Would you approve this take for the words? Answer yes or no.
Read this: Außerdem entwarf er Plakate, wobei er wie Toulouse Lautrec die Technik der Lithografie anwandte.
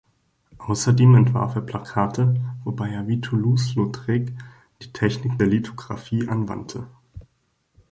yes